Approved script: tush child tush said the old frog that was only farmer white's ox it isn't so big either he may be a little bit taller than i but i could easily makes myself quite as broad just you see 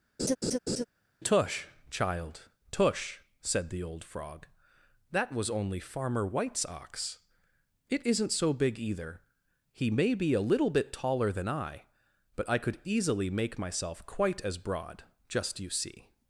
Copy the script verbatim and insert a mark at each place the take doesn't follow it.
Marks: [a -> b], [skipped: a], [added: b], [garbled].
tush child tush said the old frog that was only farmer white's ox it isn't so big either he may be a little bit taller than i but i could easily [makes -> make] myself quite as broad just you see